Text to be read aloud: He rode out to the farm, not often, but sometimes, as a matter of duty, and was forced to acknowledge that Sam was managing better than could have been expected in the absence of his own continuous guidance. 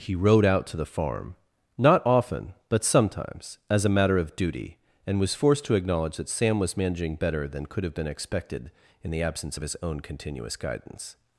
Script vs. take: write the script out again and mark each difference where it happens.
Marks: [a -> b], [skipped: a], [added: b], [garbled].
He rode out to the farm, not often, but sometimes, as a matter of duty, and was forced to acknowledge that Sam was managing better than could have been expected in the absence of his own continuous guidance.